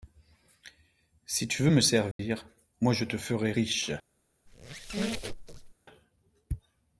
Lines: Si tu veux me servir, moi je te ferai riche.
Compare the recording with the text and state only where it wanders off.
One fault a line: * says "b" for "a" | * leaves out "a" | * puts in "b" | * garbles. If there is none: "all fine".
all fine